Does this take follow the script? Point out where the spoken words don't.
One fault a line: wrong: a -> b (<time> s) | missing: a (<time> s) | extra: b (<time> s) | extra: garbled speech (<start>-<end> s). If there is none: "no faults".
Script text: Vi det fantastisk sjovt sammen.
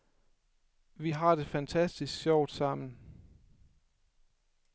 extra: har (1.1 s)